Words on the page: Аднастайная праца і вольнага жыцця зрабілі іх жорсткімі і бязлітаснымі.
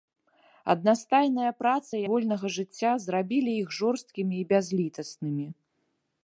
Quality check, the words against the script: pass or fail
pass